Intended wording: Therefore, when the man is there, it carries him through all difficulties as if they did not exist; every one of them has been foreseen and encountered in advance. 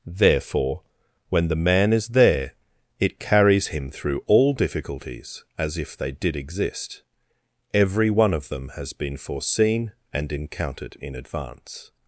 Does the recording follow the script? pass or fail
fail